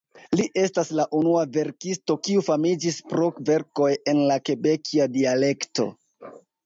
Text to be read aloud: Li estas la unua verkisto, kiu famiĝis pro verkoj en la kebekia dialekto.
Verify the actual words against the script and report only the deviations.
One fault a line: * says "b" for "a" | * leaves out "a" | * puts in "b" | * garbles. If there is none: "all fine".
all fine